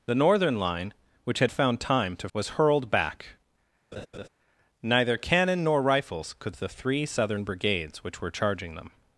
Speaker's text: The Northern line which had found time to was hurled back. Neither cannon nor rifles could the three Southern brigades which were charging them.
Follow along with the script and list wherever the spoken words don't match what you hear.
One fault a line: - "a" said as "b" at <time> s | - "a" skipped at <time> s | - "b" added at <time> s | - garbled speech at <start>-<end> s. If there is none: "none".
none